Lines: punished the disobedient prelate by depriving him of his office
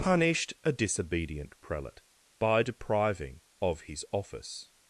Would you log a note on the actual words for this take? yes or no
yes